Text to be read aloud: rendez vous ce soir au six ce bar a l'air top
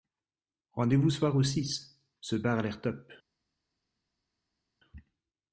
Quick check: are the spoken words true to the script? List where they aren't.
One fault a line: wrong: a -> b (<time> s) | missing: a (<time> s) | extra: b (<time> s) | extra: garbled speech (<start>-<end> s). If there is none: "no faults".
missing: ce (1.1 s)